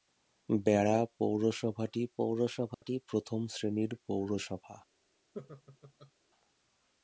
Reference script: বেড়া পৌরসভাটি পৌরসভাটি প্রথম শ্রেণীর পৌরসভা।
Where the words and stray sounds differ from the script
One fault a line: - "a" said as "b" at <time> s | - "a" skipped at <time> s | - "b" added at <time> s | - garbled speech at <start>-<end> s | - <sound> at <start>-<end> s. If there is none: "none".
- dropout at 2.7-2.8 s
- laugh at 5.3-6.1 s